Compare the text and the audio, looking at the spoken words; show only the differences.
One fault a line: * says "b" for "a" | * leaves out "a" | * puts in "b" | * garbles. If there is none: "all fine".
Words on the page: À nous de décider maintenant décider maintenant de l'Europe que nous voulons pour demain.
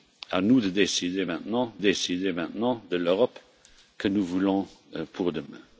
all fine